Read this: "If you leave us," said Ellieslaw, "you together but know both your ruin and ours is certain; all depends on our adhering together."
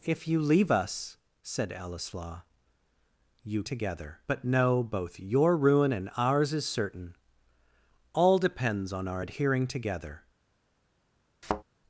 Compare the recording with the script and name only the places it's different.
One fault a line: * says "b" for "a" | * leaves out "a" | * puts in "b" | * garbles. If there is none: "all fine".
all fine